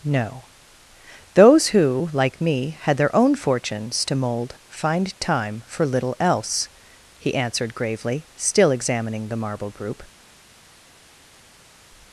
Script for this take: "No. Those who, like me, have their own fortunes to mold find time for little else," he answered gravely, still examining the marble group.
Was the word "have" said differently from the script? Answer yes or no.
yes